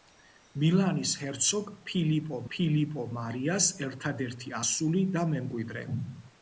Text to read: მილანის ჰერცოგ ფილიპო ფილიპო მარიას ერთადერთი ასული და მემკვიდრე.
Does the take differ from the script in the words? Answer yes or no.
no